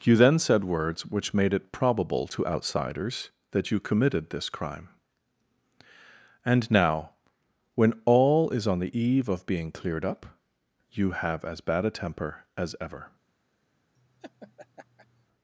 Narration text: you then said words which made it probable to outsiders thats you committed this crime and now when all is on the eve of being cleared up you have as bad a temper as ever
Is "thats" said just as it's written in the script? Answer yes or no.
no